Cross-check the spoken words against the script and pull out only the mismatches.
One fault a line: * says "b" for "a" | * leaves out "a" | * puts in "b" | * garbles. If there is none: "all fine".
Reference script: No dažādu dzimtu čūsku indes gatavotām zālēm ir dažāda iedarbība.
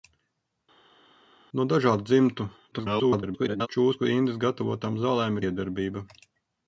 * garbles
* leaves out "ir dažāda"